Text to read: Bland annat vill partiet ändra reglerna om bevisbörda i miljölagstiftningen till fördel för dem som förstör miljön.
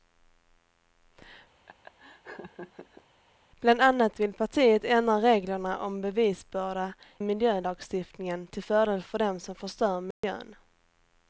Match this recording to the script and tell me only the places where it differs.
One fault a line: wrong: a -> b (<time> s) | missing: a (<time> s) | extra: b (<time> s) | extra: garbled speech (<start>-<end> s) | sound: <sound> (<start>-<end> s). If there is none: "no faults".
sound: laugh (1.7-3.0 s)
missing: i (6.9 s)
sound: dropout (10.1-10.2 s)